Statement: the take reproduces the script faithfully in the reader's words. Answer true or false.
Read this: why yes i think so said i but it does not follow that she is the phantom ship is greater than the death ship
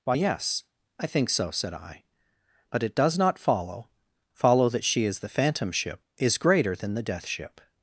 false